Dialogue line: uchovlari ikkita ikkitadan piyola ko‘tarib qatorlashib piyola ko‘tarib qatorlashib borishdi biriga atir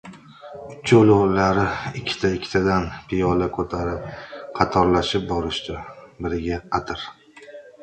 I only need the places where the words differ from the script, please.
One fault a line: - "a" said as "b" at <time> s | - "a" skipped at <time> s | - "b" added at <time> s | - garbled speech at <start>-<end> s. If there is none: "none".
- "piyola ko‘tarib qatorlashib" skipped at 5.3 s